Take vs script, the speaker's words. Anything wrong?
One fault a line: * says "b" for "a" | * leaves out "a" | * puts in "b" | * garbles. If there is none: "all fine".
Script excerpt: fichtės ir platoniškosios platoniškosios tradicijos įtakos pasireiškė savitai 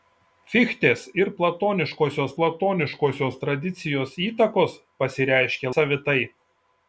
all fine